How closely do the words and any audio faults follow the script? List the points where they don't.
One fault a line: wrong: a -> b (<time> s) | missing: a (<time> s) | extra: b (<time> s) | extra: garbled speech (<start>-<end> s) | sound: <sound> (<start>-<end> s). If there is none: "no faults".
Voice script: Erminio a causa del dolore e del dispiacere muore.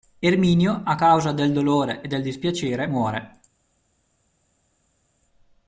no faults